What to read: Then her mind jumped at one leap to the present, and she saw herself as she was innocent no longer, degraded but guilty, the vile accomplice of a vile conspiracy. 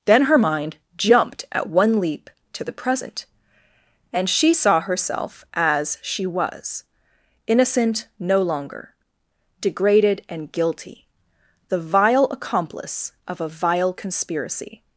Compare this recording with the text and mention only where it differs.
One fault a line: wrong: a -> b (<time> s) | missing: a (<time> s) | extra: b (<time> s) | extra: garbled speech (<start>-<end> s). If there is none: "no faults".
wrong: but -> and (10.3 s)